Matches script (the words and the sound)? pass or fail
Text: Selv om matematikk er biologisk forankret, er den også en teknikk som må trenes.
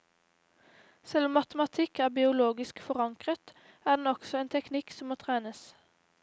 pass